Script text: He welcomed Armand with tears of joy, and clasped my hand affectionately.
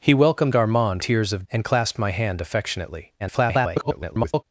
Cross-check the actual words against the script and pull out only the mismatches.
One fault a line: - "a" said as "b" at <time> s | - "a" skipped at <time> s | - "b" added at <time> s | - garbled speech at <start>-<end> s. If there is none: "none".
- "with" skipped at 1.0 s
- "joy" skipped at 1.4 s
- garbled speech at 3.2-4.4 s